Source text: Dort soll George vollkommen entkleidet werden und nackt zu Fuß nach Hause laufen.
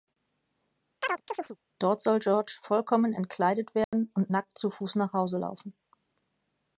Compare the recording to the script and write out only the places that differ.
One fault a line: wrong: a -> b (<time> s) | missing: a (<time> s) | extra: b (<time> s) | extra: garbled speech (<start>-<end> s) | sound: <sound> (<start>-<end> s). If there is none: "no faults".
sound: chirp (1.0-1.6 s)
sound: dropout (3.8-3.9 s)